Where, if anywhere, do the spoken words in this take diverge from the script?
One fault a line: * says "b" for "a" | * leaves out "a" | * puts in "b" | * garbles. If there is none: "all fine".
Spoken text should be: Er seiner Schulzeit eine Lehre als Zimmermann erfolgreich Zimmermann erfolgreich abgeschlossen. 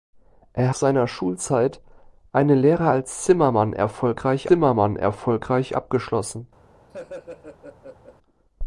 all fine